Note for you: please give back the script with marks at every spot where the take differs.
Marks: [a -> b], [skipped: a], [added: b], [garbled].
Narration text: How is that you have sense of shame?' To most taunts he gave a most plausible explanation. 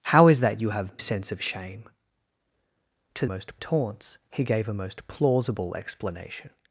How is that you have sense of shame?' To most taunts he gave a most plausible explanation.